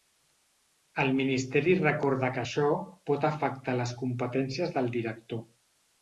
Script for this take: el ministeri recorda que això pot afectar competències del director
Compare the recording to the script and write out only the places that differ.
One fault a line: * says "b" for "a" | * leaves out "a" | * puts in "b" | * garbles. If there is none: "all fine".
* puts in "les"